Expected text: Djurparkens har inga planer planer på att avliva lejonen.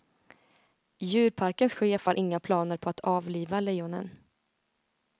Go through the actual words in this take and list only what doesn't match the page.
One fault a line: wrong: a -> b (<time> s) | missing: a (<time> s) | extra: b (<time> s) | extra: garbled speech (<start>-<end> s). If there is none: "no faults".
extra: chef (1.7 s)
missing: planer (2.8 s)